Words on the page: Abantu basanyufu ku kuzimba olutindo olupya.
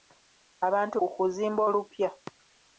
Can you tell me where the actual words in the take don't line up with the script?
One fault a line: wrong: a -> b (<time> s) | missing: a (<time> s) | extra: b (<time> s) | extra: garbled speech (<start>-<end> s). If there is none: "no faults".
missing: basanyufu (1.0 s)
missing: olutindo (1.6 s)